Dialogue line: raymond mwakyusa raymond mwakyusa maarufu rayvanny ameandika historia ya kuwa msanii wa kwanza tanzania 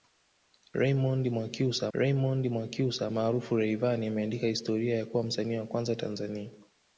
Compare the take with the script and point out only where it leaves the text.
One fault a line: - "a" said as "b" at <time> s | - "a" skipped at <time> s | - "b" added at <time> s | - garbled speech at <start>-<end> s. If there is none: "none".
none